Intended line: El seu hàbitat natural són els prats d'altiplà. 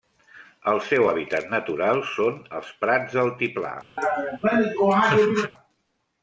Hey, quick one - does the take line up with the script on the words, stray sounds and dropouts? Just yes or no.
no